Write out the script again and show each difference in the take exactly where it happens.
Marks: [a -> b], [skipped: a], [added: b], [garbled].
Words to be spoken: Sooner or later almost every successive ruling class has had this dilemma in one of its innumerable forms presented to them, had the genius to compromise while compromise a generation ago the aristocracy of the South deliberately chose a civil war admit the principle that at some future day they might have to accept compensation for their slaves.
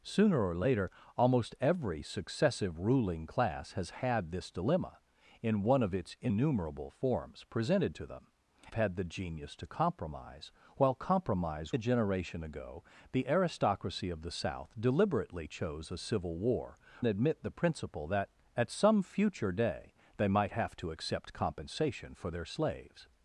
Sooner or later almost every successive ruling class has had this dilemma in one of its innumerable forms presented to them, had the genius to compromise while compromise a generation ago the aristocracy of the South deliberately chose a civil war admit the principle that at some future day they might have to accept compensation for their slaves.